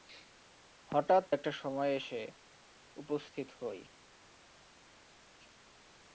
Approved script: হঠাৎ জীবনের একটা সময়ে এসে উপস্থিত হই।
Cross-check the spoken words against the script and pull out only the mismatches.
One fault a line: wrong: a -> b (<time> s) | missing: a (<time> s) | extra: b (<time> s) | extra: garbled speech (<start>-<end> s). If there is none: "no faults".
missing: জীবনের (1.2 s)